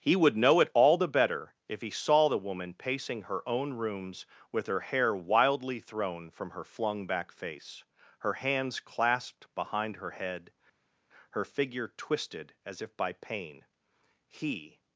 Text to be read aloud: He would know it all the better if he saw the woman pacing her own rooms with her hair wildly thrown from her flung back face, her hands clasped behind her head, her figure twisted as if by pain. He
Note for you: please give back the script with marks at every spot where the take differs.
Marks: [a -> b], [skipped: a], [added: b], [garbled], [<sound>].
He would know it all the better if he saw the woman pacing her own rooms with her hair wildly thrown from her flung back face, her hands clasped behind her head, her figure twisted as if by pain. He